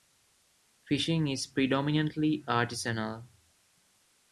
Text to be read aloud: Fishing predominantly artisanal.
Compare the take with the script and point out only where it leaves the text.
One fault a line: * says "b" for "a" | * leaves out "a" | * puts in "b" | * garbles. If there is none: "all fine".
* puts in "is"